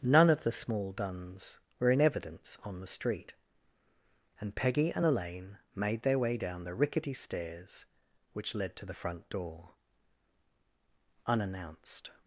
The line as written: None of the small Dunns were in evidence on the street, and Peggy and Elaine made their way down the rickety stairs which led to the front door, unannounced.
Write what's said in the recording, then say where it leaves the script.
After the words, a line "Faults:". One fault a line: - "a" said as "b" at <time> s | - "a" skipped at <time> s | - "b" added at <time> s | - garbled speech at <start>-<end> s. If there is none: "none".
None of the small Dunns were in evidence on the street, and Peggy and Elaine made their way down the rickety stairs which led to the front door, unannounced.
Faults:
none